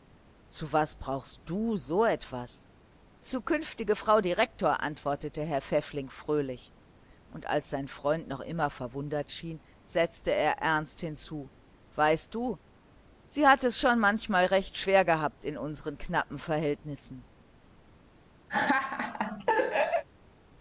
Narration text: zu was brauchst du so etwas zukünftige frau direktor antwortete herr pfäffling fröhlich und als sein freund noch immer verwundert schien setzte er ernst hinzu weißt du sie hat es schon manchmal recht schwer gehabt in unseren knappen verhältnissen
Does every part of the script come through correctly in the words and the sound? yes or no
no